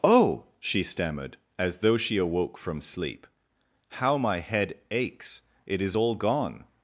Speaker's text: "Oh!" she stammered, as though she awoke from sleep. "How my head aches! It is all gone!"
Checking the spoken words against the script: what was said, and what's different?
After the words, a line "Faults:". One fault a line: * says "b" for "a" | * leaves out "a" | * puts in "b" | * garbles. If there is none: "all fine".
"Oh!" she stammered, as though she awoke from sleep. "How my head aches! It is all gone!"
Faults:
all fine